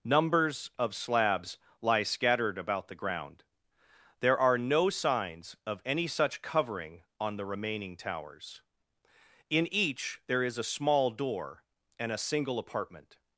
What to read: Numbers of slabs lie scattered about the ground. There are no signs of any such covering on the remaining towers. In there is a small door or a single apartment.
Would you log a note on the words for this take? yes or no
yes